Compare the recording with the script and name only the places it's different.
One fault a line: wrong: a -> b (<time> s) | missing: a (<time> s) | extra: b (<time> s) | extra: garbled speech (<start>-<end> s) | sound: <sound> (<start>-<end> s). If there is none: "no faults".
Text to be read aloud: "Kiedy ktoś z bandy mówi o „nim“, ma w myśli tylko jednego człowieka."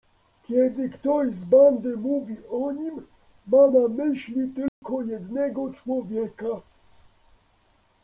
wrong: w -> na (3.7 s)
sound: dropout (4.7-4.8 s)